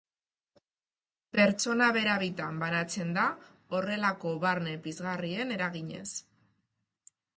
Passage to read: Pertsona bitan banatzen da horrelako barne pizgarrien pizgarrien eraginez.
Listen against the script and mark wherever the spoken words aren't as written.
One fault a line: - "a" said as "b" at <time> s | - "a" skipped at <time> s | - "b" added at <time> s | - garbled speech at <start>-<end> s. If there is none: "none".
- "bera" added at 2.0 s
- "pizgarrien" skipped at 5.5 s